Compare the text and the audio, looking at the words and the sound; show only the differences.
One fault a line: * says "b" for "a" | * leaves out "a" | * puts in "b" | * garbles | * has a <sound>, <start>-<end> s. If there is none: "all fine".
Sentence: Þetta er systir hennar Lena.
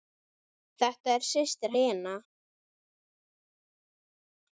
* leaves out "hennar"